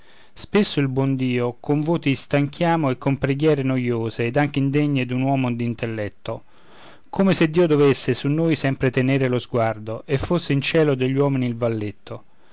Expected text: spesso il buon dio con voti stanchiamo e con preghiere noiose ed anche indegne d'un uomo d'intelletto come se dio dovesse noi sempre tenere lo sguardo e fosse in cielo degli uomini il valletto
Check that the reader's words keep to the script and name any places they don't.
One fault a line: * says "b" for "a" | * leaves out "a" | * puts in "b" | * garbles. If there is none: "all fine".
* puts in "su"